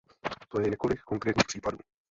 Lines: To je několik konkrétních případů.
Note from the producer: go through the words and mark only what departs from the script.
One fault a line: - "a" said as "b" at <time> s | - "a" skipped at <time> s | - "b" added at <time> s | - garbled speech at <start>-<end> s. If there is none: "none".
none